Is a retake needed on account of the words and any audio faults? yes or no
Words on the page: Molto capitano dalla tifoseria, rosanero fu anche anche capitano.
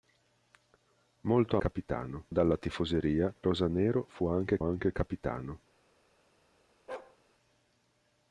yes